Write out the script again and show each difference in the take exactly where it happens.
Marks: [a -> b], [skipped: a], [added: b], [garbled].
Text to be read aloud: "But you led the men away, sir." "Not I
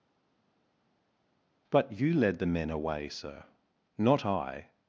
"But you led the men away, sir." "Not I